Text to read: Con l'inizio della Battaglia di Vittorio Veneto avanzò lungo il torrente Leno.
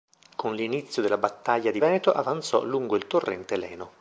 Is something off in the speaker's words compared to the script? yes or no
yes